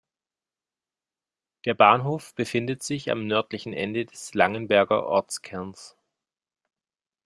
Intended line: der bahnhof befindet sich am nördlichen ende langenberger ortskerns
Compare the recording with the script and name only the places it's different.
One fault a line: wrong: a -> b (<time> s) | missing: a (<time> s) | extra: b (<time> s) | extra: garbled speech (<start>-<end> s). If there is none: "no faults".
extra: des (4.0 s)